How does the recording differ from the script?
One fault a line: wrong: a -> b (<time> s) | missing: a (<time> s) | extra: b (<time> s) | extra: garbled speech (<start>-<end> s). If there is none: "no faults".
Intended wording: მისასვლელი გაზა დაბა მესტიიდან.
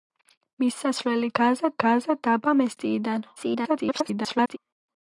extra: გაზა (1.9 s)
extra: garbled speech (3.4-4.6 s)